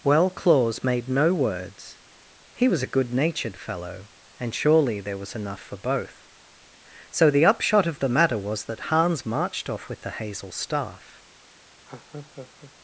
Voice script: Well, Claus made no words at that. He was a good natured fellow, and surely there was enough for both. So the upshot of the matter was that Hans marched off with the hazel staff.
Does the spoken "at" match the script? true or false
false